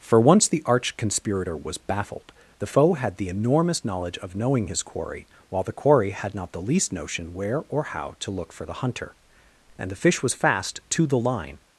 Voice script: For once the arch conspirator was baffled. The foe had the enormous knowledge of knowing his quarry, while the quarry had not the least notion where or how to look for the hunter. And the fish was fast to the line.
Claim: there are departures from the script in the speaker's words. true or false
false